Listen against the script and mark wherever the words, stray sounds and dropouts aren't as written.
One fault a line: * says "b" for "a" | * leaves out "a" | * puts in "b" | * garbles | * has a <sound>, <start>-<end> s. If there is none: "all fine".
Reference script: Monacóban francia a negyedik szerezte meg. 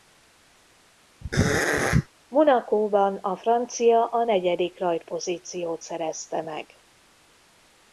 * has a throat clearing, 1.2-2.1 s
* puts in "a"
* puts in "rajtpozíciót"